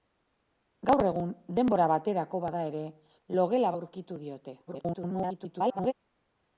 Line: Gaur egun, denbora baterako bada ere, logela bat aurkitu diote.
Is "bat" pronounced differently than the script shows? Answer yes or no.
yes